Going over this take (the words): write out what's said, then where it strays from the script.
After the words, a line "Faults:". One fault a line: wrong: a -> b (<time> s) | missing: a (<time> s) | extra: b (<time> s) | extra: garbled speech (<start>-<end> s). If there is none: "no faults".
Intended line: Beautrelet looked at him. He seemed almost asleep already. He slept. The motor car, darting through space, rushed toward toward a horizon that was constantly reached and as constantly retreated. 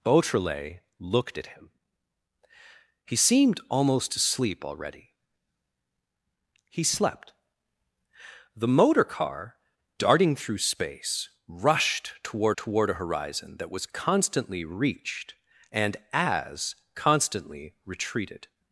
Beautrelet looked at him. He seemed almost asleep already. He slept. The motor car, darting through space, rushed toward toward a horizon that was constantly reached and as constantly retreated.
Faults:
no faults